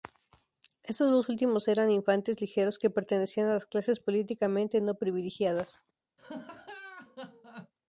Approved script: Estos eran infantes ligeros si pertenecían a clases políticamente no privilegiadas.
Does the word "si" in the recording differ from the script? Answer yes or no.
yes